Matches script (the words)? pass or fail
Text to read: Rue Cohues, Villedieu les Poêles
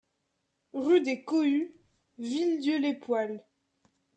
fail